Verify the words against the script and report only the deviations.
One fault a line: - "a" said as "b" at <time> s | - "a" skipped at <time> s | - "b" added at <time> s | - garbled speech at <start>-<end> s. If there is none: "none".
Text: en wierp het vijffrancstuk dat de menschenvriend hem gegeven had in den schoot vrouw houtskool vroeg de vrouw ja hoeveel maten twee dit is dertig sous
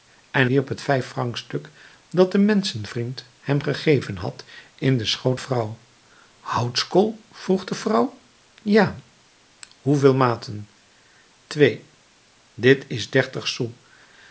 none